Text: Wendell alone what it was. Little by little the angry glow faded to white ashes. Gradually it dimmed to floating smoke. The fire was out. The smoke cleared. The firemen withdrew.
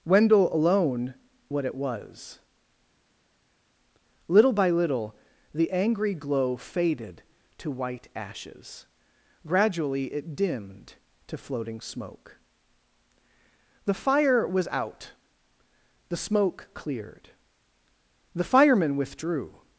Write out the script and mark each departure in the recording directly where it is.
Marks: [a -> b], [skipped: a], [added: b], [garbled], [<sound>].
Wendell alone what it was. Little by little the angry glow faded to white ashes. Gradually it dimmed to floating smoke. The fire was out. The smoke cleared. The firemen withdrew.